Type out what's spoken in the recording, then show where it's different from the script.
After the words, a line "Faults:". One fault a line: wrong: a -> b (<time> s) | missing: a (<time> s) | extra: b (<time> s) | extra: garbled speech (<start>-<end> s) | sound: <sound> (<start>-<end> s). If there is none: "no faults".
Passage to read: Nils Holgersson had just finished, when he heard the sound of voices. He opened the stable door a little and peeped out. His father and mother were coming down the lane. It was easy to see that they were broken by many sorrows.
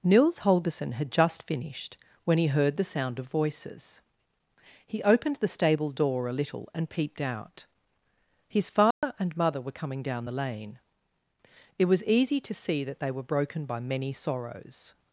Nils Holgersson had just finished, when he heard the sound of voices. He opened the stable door a little and peeped out. His father and mother were coming down the lane. It was easy to see that they were broken by many sorrows.
Faults:
sound: dropout (8.9-9.0 s)